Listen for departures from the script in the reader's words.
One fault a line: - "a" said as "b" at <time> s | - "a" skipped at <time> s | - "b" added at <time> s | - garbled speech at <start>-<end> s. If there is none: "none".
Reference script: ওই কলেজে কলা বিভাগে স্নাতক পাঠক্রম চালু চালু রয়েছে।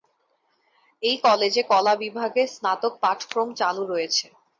- "ওই" said as "এই" at 1.0 s
- "চালু" skipped at 3.8 s